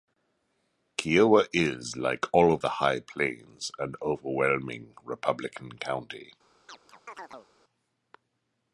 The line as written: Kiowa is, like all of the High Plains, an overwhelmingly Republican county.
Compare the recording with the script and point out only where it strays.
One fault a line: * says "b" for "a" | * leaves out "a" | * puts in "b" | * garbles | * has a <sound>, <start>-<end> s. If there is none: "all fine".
* has a chirp, 6.7-7.5 s